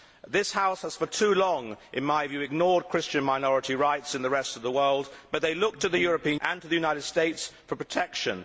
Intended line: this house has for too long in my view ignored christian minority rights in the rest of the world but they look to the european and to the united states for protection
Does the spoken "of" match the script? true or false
true